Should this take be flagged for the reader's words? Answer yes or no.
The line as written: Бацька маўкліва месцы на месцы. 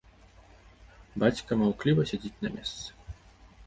yes